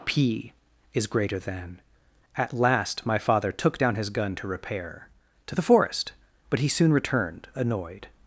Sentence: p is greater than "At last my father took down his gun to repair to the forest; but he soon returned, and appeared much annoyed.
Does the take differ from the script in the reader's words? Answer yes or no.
yes